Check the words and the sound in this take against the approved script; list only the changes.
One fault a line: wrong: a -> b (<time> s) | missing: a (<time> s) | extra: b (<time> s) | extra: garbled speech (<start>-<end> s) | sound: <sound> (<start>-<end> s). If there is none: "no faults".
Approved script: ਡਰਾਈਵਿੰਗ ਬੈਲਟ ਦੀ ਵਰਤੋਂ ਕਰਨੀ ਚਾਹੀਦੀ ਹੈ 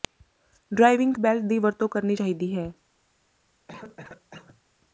sound: cough (3.7-4.6 s)